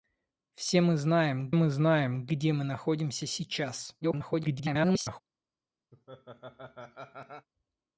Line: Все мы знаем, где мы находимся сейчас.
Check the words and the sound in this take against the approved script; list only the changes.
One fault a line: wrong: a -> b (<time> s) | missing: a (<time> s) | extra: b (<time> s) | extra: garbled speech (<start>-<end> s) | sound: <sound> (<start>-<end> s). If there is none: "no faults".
extra: мы знаем (1.5 s)
extra: garbled speech (4.0-5.2 s)
sound: laugh (5.9-7.5 s)